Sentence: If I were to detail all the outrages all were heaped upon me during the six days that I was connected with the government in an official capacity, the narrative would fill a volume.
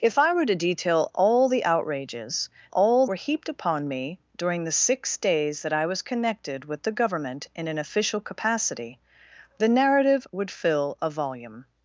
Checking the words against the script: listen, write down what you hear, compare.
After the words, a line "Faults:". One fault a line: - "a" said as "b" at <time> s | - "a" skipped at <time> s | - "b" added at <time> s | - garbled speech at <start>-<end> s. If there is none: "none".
If I were to detail all the outrages all were heaped upon me during the six days that I was connected with the government in an official capacity, the narrative would fill a volume.
Faults:
none